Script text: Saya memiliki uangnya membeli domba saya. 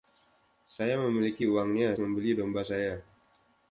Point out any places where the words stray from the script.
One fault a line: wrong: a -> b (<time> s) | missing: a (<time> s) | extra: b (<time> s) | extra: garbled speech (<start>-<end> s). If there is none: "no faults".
no faults